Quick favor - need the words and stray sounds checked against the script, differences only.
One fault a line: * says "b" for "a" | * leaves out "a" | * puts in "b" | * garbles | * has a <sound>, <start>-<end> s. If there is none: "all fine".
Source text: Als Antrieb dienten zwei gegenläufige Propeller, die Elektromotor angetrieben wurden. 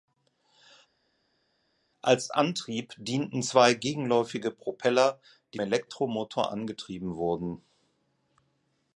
all fine